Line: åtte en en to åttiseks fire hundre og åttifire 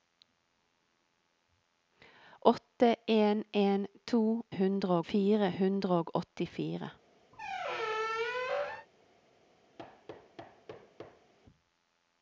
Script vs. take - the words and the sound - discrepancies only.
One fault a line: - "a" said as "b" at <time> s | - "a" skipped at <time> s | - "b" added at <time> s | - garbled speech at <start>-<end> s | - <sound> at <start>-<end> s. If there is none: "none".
- "åttiseks" said as "hundre" at 4.6 s
- squeak at 7.3-8.9 s
- thud at 9.8-11.3 s